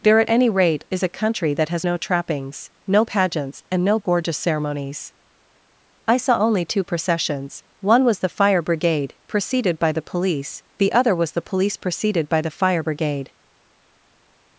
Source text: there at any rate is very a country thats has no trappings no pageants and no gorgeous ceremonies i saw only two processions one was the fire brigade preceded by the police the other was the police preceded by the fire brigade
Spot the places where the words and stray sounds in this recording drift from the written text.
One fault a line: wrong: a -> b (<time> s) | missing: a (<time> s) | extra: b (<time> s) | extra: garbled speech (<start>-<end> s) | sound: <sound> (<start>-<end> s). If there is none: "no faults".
missing: very (1.0 s)
wrong: thats -> that (1.5 s)